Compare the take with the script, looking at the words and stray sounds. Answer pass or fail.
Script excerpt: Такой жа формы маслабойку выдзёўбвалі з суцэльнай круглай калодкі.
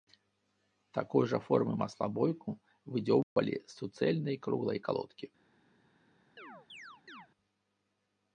fail